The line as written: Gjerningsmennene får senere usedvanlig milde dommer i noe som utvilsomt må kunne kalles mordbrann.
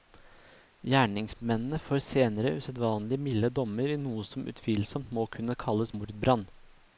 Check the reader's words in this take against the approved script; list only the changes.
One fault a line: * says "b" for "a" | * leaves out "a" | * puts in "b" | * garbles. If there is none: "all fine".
all fine